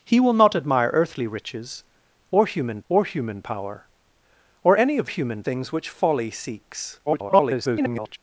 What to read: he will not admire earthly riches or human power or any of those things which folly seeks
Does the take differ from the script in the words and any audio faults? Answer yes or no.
yes